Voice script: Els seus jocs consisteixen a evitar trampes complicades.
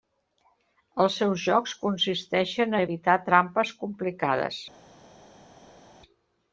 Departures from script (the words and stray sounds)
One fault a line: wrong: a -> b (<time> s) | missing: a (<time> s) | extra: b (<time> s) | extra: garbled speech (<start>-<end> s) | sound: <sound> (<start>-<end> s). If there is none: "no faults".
no faults